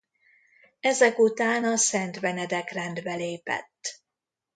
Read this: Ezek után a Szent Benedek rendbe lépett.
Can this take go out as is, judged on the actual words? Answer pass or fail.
pass